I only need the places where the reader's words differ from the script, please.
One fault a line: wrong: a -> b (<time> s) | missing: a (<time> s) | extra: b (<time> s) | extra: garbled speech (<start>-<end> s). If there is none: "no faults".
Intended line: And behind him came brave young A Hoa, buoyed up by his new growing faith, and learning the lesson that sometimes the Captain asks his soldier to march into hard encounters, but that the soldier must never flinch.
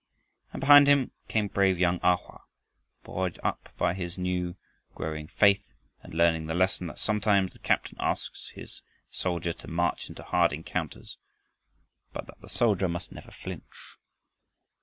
no faults